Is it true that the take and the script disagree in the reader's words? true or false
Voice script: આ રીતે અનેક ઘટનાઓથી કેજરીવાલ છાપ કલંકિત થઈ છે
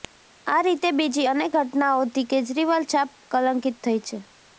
true